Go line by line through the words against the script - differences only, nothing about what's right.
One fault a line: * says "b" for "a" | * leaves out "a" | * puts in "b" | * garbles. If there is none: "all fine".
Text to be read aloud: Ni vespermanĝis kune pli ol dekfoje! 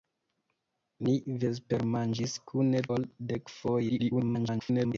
* leaves out "pli"
* garbles